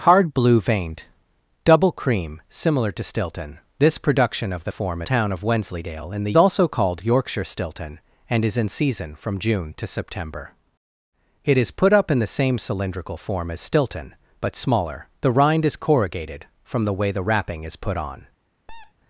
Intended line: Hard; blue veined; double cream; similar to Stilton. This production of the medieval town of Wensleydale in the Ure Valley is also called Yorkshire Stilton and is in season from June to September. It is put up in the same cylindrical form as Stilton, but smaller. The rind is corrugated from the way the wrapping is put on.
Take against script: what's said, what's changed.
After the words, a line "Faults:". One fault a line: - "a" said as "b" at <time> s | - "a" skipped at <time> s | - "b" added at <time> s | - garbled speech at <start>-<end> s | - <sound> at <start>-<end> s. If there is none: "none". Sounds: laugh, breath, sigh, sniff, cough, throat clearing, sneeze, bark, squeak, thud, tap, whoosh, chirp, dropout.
Hard; blue veined; double cream; similar to Stilton. This production of the form town of Wensleydale in the Also called Yorkshire Stilton and is in season from June to September. It is put up in the same cylindrical form as Stilton, but smaller. The rind is corrugated from the way the wrapping is put on.
Faults:
- "medieval" said as "form" at 4.7 s
- "Ure Valley is" skipped at 6.3 s
- squeak at 18.7-18.9 s